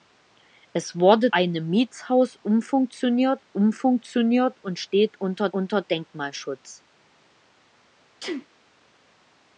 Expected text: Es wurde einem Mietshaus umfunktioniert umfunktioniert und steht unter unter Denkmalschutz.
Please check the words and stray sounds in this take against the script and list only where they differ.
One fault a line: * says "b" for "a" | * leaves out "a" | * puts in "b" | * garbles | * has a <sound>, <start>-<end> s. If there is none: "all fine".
* has a sneeze, 8.2-8.5 s